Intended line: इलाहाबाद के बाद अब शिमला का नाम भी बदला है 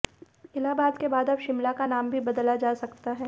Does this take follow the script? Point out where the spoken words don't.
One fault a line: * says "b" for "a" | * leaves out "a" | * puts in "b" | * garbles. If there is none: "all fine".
* puts in "जा सकता"